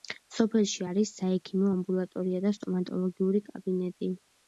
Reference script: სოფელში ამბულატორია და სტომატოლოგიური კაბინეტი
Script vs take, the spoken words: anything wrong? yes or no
yes